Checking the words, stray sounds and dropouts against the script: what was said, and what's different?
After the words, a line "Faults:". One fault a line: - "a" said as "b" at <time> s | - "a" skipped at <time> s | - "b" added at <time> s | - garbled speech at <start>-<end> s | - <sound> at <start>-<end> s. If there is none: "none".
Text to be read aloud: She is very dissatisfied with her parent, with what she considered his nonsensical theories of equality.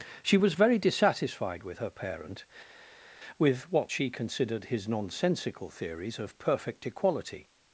She was very dissatisfied with her parent, with what she considered his nonsensical theories of perfect equality.
Faults:
- "is" said as "was" at 0.4 s
- "perfect" added at 6.4 s